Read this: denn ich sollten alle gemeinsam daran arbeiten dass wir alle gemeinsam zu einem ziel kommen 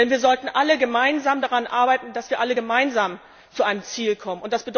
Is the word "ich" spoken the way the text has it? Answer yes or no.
no